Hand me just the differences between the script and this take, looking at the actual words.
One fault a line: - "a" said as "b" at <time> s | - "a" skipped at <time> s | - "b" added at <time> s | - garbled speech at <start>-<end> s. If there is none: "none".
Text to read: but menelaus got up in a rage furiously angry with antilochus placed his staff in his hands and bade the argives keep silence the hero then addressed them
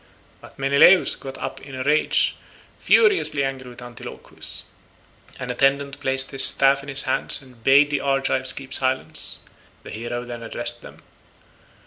- "an attendant" added at 5.4 s